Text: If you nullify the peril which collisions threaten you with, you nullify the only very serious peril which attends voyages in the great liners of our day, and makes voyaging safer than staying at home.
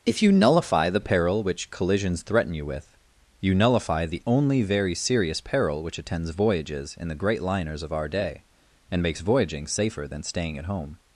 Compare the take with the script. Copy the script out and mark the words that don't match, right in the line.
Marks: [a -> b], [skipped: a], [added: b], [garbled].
If you nullify the peril which collisions threaten you with, you nullify the only very serious peril which attends voyages in the great liners of our day, and makes voyaging safer than staying at home.